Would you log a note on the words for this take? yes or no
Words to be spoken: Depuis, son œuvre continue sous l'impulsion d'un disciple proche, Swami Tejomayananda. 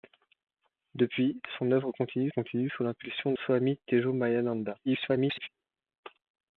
yes